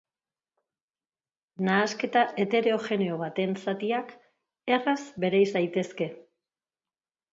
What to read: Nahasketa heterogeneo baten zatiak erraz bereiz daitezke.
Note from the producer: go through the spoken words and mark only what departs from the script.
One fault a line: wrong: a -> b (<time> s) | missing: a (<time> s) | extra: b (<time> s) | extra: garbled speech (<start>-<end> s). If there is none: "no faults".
no faults